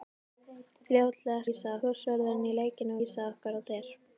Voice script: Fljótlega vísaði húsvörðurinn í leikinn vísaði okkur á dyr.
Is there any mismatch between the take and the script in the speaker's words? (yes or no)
no